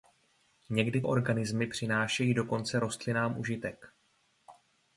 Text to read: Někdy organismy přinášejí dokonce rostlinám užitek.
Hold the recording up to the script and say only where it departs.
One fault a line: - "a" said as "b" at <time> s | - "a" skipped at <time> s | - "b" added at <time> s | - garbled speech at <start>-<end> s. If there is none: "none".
none